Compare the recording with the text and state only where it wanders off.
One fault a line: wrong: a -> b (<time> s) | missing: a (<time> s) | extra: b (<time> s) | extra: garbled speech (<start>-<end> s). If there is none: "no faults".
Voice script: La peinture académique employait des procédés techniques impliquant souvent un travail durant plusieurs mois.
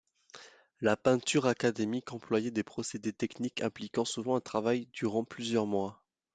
no faults